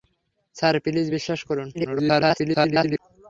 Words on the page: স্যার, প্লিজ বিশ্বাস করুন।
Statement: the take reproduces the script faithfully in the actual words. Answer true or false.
false